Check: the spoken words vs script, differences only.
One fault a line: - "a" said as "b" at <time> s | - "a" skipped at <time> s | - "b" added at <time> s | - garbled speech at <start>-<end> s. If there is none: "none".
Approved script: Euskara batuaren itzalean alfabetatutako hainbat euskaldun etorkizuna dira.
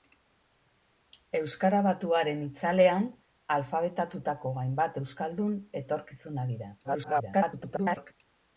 - garbled speech at 6.8-8.1 s